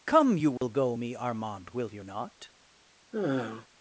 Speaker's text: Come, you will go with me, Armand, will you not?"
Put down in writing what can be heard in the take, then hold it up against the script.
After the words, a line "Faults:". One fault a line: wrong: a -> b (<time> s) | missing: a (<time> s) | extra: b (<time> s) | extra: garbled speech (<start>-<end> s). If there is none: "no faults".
Come, you will go me, Armand, will you not?"
Faults:
missing: with (1.0 s)